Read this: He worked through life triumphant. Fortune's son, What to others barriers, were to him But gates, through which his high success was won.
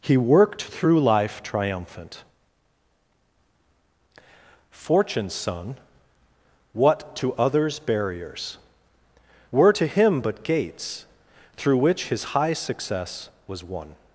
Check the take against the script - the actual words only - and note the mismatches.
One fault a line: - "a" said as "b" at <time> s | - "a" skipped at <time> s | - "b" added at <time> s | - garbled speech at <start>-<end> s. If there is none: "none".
none